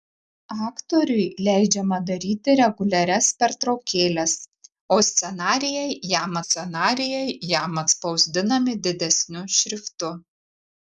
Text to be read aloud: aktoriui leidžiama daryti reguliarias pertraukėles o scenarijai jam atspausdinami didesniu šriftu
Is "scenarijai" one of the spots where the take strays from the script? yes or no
no